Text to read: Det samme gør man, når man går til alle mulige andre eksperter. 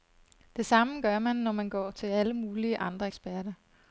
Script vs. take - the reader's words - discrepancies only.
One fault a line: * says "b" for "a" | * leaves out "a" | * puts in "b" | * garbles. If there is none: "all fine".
all fine